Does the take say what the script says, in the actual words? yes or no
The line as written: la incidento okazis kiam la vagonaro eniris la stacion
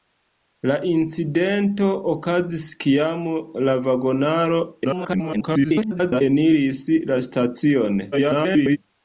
no